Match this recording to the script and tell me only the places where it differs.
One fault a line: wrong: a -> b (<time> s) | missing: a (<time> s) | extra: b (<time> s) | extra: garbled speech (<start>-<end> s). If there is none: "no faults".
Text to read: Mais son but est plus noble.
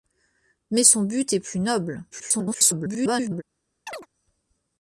extra: garbled speech (2.1-3.4 s)